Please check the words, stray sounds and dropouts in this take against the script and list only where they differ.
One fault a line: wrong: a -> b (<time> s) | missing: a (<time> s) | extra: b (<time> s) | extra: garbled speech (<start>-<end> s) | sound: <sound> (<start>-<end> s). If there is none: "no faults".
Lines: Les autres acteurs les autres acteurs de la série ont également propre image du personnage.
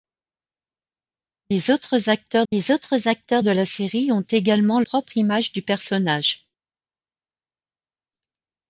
no faults